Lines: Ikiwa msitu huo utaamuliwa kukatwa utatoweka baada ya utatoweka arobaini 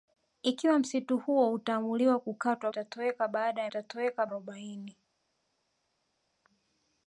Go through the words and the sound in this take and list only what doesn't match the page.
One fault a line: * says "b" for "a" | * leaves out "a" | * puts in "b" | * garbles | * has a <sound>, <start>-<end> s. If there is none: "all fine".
all fine